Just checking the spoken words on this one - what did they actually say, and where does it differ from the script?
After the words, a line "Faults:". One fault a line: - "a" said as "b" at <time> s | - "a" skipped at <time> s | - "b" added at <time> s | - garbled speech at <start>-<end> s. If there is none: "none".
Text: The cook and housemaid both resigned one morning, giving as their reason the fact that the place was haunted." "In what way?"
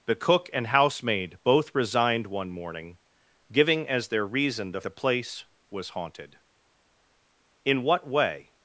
The cook and housemaid both resigned one morning, giving as their reason the the place was haunted." "In what way?"
Faults:
- "fact that" skipped at 4.8 s